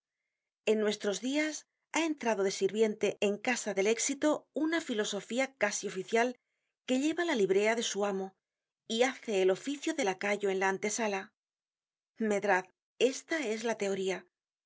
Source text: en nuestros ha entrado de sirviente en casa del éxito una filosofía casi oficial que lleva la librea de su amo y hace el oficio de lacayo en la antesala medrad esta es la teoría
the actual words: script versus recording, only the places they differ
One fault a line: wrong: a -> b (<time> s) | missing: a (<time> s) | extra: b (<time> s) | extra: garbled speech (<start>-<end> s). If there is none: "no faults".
extra: dias (1.2 s)